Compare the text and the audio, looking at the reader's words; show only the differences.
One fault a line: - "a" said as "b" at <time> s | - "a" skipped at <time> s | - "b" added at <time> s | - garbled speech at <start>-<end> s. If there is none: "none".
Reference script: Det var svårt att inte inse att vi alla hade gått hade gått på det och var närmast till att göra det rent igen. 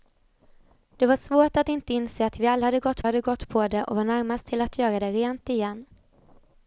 none